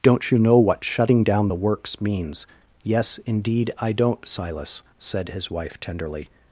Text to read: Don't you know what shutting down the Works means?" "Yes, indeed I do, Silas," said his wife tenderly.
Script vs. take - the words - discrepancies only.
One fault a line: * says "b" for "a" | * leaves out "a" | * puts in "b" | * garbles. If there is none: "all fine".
* says "don't" for "do"